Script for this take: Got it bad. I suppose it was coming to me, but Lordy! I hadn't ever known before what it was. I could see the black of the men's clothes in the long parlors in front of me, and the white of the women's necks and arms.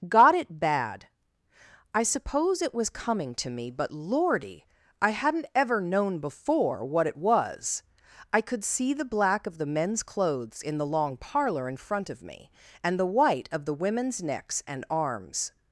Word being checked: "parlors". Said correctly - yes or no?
no